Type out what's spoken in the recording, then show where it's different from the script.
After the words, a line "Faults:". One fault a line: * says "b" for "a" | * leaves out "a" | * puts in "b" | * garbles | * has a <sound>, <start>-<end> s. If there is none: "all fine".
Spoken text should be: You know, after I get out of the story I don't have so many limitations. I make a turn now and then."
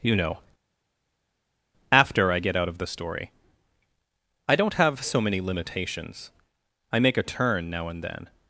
You know, after I get out of the story I don't have so many limitations. I make a turn now and then."
Faults:
all fine